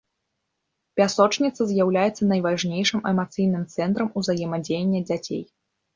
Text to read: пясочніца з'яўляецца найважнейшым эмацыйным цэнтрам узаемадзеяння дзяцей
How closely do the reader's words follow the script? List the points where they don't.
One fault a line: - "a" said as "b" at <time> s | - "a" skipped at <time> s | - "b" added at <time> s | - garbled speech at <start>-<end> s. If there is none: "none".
none